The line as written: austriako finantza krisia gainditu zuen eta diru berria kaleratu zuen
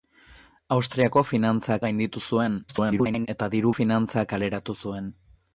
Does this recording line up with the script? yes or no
no